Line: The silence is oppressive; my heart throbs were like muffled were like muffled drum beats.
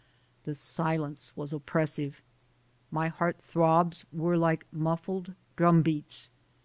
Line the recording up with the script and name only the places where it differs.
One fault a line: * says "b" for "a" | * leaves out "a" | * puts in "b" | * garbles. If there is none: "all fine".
* says "was" for "is"
* leaves out "were like muffled"